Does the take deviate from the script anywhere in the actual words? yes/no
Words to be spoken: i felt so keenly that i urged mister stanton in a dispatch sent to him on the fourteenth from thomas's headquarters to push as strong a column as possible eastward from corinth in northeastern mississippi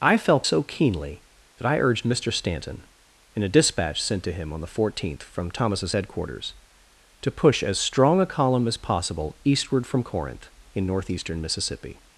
no